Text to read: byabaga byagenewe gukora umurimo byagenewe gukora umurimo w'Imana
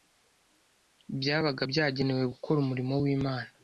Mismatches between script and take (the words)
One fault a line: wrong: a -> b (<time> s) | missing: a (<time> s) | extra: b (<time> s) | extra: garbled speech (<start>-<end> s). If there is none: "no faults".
missing: byagenewe gukora umurimo (2.9 s)